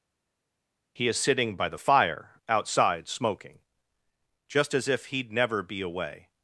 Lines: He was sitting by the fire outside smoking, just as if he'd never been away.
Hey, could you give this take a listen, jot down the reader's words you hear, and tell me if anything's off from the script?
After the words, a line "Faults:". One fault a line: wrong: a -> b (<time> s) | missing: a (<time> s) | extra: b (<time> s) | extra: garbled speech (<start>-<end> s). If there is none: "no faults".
He is sitting by the fire outside smoking, just as if he'd never be away.
Faults:
wrong: was -> is (1.1 s)
wrong: been -> be (5.6 s)